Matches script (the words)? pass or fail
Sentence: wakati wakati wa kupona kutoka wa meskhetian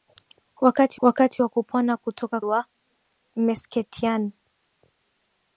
pass